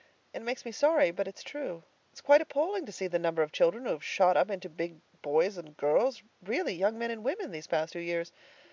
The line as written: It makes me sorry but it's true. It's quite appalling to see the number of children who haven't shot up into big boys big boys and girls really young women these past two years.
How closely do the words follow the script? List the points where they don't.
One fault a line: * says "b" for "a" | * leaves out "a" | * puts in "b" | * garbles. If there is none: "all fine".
* says "have" for "haven't"
* leaves out "big boys"
* puts in "men and"